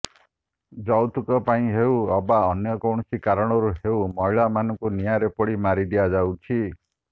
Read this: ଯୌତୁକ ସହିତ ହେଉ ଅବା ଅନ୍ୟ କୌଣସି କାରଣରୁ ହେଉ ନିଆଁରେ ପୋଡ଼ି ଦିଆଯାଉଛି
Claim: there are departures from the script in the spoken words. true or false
true